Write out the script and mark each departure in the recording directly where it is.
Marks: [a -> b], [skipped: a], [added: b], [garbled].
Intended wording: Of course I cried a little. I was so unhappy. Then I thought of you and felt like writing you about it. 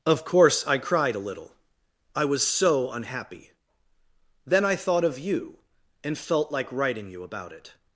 Of course I cried a little. I was so unhappy. Then I thought of you and felt like writing you about it.